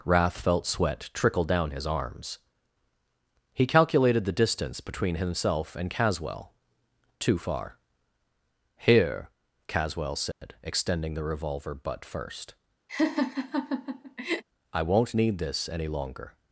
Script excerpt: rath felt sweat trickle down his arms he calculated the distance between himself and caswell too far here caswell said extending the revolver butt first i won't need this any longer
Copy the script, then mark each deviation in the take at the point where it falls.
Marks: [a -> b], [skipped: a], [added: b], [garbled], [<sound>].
rath felt sweat trickle down his arms he calculated the distance between himself and caswell too far here caswell said [dropout] extending the revolver butt first [laugh] i won't need this any longer